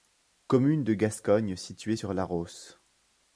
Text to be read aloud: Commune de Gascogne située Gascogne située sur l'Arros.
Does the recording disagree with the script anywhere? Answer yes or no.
yes